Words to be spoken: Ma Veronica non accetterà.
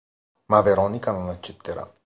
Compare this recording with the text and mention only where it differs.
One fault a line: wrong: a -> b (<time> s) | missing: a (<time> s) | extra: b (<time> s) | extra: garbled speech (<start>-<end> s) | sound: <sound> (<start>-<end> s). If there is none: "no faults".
no faults